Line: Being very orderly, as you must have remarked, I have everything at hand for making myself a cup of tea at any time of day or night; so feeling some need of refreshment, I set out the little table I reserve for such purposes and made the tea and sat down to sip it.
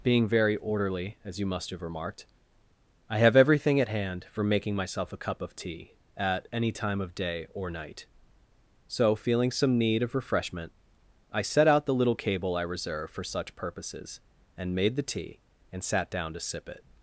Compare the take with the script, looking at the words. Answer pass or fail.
fail